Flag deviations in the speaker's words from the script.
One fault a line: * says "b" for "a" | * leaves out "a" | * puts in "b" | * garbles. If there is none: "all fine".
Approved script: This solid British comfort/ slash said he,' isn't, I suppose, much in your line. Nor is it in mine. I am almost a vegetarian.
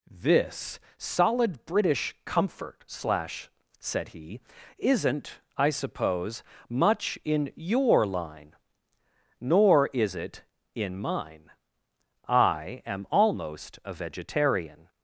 all fine